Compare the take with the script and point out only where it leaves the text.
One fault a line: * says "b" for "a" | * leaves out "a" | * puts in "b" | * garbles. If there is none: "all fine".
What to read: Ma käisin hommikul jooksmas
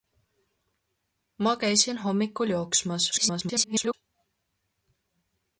* garbles